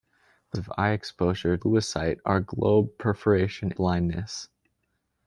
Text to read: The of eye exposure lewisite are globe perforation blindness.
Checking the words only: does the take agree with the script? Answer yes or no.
yes